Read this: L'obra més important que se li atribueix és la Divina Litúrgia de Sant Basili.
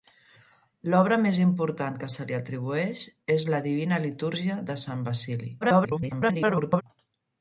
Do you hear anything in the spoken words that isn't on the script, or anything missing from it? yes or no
yes